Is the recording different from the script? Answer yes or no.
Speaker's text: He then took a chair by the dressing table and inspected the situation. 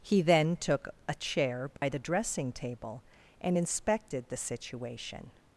no